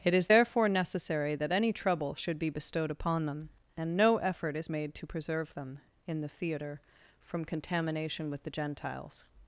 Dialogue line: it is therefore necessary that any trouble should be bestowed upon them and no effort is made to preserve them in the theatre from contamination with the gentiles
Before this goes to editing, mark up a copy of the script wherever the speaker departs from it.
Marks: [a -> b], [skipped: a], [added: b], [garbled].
it is therefore necessary that any trouble should be bestowed upon them and no effort is made to preserve them in the theatre from contamination with the gentiles